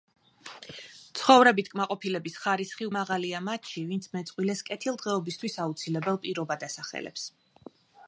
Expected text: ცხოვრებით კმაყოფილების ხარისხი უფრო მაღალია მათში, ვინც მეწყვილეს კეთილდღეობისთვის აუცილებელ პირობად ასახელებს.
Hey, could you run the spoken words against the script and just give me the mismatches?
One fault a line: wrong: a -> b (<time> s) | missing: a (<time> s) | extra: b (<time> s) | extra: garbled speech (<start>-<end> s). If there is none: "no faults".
missing: უფრო (2.9 s)